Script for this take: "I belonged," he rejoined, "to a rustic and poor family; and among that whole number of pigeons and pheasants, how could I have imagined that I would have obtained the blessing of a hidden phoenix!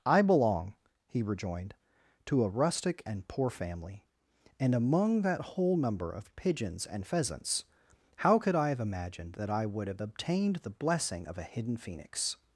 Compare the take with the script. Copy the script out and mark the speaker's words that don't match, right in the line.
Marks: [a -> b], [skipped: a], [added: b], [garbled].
"I [belonged," -> belong] he rejoined, "to a rustic and poor family; and among that whole number of pigeons and pheasants, how could I have imagined that I would have obtained the blessing of a hidden phoenix!